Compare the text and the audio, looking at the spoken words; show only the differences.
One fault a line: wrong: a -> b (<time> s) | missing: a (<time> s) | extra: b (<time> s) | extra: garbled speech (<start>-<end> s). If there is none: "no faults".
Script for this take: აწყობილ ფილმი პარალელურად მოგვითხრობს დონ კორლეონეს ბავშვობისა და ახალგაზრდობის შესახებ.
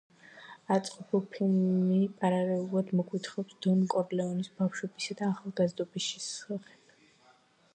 no faults